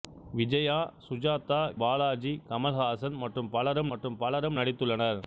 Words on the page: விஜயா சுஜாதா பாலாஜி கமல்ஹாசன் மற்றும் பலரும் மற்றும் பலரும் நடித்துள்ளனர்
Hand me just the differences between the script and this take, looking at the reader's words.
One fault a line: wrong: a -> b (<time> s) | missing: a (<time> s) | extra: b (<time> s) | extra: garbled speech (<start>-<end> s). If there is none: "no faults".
no faults